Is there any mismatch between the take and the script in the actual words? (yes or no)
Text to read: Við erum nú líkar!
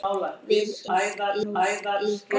yes